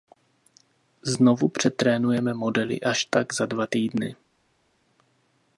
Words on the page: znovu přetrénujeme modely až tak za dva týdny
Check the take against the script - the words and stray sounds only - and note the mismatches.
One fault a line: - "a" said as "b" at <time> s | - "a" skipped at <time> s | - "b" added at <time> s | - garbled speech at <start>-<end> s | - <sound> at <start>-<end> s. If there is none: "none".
none